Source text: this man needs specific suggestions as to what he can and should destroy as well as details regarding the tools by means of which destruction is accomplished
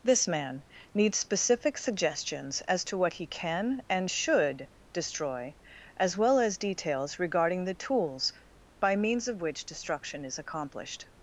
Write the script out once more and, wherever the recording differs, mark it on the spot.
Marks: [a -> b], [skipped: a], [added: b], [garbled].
this man needs specific suggestions as to what he can and should destroy as well as details regarding the tools by means of which destruction is accomplished